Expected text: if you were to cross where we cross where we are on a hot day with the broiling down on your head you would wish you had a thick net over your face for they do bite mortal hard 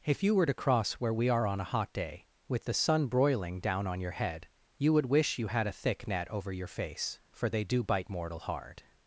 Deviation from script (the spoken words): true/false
true